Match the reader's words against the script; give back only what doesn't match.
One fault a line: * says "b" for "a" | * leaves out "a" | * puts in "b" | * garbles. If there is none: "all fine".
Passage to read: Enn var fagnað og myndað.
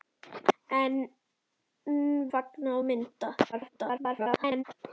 * leaves out "var"
* garbles